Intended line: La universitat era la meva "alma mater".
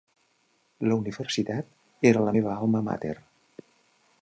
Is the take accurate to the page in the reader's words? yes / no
yes